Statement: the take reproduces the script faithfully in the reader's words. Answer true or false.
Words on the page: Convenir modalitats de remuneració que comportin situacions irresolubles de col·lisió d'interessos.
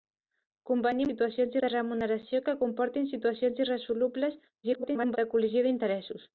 false